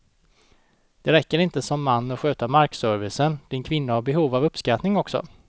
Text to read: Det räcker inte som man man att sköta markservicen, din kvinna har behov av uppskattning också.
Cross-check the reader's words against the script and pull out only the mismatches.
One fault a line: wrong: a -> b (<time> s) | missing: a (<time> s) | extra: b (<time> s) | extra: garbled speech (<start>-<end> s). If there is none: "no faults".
missing: man (2.1 s)